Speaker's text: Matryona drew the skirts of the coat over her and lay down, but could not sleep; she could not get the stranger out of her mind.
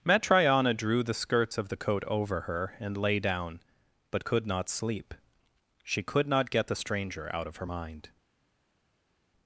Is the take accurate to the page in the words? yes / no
yes